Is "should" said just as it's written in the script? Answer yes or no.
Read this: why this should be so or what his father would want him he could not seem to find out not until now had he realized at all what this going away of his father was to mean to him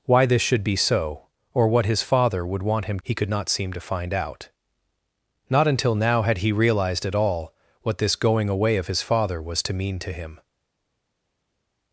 yes